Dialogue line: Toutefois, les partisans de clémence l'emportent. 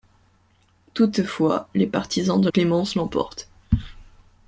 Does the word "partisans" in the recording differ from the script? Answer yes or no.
no